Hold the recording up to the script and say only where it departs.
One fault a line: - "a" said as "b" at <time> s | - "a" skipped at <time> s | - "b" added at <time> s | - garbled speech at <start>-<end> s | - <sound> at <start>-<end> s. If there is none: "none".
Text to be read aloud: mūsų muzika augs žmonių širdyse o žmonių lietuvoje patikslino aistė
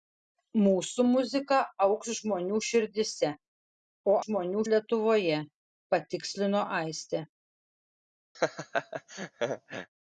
- laugh at 8.3-9.9 s